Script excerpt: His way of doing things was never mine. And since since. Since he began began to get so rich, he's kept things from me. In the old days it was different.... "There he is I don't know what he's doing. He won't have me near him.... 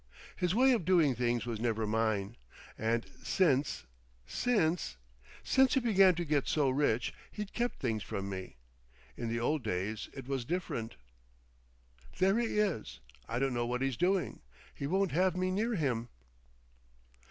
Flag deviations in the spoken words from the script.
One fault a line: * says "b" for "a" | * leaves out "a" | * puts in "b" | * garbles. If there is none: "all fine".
* leaves out "began"